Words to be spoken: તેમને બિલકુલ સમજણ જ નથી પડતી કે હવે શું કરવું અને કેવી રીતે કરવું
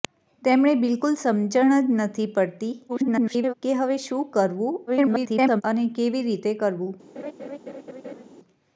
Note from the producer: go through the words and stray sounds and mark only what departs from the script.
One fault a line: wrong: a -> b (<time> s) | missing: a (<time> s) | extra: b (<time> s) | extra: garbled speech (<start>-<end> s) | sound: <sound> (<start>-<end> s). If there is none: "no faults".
extra: garbled speech (2.9-3.5 s)
extra: garbled speech (4.9-5.6 s)
sound: laugh (7.2-8.2 s)